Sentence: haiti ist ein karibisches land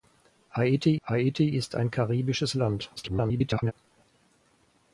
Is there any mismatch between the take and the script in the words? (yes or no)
yes